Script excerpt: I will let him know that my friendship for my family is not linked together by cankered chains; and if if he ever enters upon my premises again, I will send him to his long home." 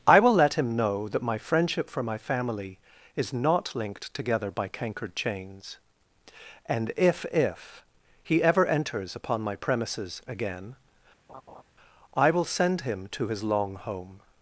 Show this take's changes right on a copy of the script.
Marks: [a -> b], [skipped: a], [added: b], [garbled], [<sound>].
I will let him know that my friendship for my family is not linked together by cankered chains; and if if he ever enters upon my premises again, [laugh] I will send him to his long home."